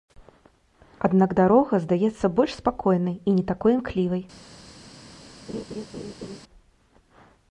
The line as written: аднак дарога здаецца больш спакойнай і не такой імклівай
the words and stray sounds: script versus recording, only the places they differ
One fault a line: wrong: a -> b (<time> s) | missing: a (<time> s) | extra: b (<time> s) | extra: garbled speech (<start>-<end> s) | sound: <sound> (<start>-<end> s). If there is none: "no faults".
sound: laugh (5.5-6.4 s)